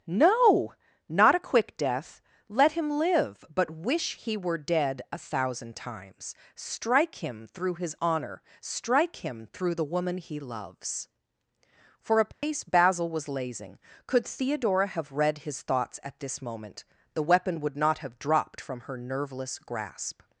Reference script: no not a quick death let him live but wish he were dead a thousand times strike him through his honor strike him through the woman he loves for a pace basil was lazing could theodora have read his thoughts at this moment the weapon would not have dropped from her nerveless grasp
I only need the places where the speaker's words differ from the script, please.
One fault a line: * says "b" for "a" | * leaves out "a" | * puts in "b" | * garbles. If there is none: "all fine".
all fine